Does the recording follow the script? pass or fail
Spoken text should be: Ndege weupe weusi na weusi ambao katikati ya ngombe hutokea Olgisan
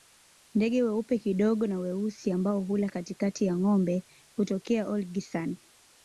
fail